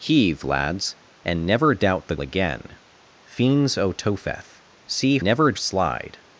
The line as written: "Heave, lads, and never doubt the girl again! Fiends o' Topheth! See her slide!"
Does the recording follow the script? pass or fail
fail